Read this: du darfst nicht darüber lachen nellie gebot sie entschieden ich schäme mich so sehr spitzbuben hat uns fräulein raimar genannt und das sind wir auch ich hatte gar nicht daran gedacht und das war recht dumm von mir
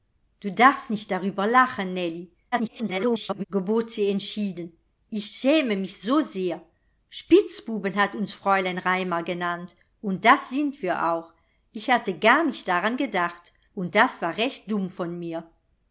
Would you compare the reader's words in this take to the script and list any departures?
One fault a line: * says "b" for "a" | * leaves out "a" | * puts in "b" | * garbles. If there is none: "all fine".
* garbles